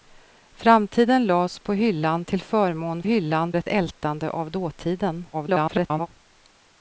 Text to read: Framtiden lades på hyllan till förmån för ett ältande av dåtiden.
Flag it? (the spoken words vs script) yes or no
yes